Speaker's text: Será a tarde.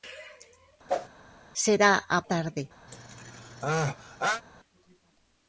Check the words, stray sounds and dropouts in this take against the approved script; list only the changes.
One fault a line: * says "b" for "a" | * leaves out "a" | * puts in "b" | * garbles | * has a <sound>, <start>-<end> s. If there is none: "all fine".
* has a whoosh, 0.9-1.1 s
* has a sneeze, 2.9-4.4 s